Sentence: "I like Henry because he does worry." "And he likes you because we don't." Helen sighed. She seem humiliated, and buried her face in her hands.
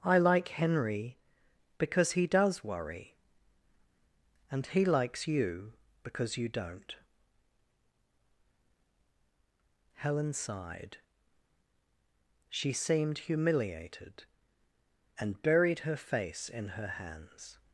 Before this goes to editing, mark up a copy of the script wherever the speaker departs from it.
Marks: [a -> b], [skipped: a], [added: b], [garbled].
"I like Henry because he does worry." "And he likes you because [we -> you] don't." Helen sighed. She [seem -> seemed] humiliated, and buried her face in her hands.